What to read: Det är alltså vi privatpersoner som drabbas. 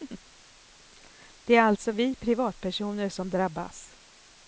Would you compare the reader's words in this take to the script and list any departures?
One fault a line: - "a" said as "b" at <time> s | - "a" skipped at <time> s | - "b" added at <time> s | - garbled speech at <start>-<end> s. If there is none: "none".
none